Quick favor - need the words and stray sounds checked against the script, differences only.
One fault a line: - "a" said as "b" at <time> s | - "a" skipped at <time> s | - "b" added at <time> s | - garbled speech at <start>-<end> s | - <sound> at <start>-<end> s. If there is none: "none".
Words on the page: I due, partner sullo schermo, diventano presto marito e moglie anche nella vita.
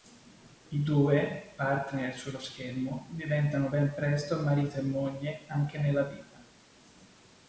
- "ben" added at 3.7 s